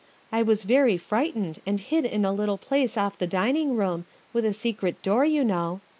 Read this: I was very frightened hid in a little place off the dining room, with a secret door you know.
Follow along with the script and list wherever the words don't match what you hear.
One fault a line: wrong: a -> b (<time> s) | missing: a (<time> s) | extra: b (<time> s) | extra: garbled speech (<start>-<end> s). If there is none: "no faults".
extra: and (1.6 s)